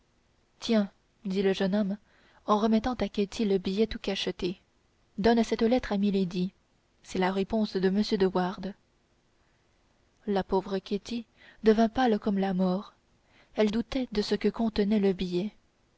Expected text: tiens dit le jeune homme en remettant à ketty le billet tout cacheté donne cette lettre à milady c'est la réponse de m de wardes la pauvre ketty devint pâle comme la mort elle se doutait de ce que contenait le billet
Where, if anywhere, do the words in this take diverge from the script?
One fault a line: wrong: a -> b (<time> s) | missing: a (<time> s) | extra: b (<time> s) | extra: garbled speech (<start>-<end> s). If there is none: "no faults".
missing: se (13.7 s)